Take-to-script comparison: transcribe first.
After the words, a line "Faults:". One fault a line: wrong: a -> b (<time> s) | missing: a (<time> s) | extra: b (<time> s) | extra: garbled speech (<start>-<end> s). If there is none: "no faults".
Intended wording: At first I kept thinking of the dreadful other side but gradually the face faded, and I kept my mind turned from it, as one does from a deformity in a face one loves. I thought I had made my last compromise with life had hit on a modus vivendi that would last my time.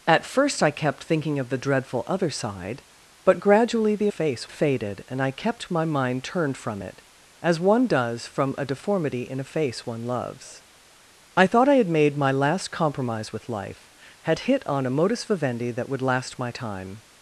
At first I kept thinking of the dreadful other side but gradually the face faded, and I kept my mind turned from it, as one does from a deformity in a face one loves. I thought I had made my last compromise with life had hit on a modus vivendi that would last my time.
Faults:
no faults